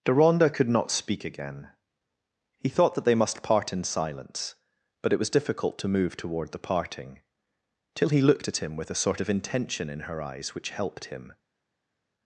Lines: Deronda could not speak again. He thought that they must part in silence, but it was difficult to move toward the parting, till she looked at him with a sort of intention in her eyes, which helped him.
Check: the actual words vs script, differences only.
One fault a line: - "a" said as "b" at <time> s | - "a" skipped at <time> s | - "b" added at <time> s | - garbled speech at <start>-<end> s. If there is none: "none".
- "she" said as "he" at 8.1 s